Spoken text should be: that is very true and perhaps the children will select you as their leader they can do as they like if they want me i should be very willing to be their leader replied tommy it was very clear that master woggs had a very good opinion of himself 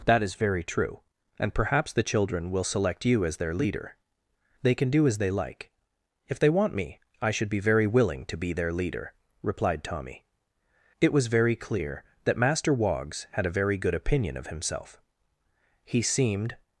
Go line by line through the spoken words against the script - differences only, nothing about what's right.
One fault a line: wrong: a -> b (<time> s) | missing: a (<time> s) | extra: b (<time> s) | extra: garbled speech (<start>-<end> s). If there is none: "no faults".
extra: he seemed (15.8 s)